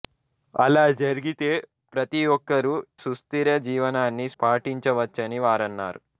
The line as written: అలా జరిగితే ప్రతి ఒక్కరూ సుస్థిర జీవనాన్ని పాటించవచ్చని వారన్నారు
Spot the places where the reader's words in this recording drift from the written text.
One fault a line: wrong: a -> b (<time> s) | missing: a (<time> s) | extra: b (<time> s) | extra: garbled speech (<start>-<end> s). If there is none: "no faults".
no faults